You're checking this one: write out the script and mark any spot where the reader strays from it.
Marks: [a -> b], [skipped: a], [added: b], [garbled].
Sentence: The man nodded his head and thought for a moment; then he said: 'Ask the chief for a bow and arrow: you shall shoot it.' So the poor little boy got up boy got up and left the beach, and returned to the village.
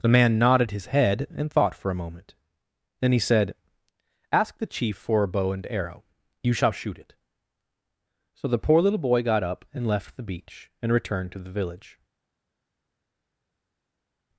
The man nodded his head and thought for a moment; then he said: 'Ask the chief for a bow and arrow: you shall shoot it.' So the poor little boy got up [skipped: boy got up] and left the beach, and returned to the village.